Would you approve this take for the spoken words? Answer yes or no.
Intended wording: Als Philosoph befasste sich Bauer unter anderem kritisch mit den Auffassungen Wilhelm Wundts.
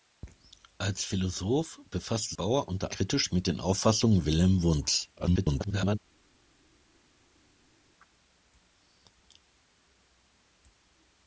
no